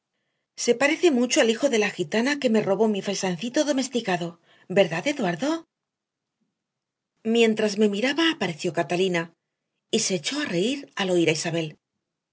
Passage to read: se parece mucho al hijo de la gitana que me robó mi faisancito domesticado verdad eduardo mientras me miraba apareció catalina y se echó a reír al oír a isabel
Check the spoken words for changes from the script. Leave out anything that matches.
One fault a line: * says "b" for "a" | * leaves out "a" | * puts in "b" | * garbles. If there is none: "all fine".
all fine